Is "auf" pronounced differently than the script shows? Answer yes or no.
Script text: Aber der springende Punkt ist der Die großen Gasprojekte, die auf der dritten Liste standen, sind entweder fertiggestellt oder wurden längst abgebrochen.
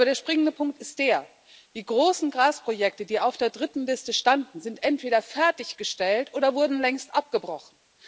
no